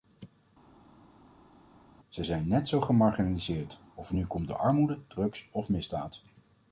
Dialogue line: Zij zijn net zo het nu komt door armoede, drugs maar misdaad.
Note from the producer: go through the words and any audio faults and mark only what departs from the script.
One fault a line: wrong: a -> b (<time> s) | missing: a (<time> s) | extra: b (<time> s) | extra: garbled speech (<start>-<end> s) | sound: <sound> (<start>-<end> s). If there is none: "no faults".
extra: gemarginaliseerd of (2.8 s)
wrong: maar -> of (5.5 s)